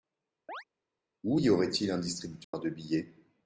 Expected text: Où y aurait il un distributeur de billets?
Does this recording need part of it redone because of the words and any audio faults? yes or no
yes